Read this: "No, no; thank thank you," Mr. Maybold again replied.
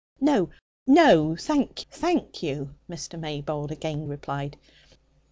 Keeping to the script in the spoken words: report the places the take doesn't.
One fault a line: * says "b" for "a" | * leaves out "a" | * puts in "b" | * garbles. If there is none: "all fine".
all fine